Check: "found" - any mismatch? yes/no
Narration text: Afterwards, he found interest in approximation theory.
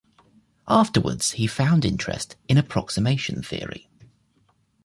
no